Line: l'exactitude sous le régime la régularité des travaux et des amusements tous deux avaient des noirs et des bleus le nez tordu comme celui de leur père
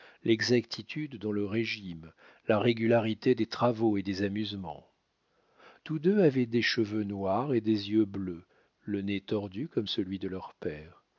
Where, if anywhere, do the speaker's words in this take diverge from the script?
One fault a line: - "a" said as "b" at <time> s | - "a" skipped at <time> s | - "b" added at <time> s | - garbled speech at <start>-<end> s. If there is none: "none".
- "sous" said as "dans" at 1.2 s
- "cheveux" added at 6.6 s
- "yeux" added at 7.9 s